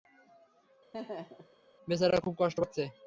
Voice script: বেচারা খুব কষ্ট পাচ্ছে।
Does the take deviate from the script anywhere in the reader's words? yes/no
no